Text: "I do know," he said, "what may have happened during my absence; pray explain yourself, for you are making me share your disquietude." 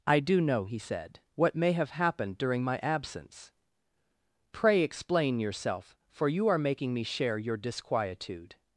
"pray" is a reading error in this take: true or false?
false